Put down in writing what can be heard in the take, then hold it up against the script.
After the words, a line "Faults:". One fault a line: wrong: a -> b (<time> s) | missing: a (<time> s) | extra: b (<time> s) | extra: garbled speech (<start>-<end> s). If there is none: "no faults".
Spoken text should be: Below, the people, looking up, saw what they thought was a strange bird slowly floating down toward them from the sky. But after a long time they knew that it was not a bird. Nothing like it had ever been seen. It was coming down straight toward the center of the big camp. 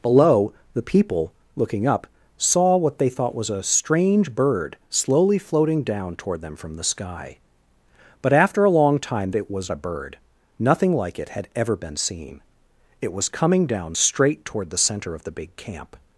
Below, the people, looking up, saw what they thought was a strange bird slowly floating down toward them from the sky. But after a long time it was a bird. Nothing like it had ever been seen. It was coming down straight toward the center of the big camp.
Faults:
missing: they knew that (9.3 s)
missing: not (9.7 s)